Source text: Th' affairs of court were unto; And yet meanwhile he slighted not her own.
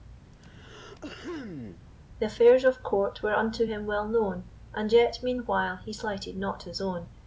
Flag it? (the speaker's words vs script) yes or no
yes